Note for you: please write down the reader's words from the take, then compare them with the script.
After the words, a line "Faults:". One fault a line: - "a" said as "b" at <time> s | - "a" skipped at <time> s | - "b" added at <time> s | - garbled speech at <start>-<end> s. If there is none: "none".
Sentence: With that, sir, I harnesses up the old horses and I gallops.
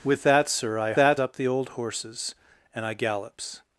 With that, sir, I that up the old horses and I gallops.
Faults:
- "harnesses" said as "that" at 0.9 s